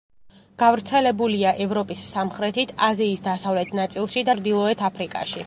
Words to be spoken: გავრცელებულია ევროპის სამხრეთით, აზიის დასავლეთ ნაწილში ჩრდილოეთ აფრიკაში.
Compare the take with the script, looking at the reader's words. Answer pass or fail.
pass